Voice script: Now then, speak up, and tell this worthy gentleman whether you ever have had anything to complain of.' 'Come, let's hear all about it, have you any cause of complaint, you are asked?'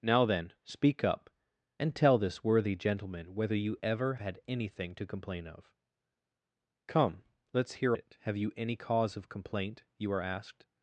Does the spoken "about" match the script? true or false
false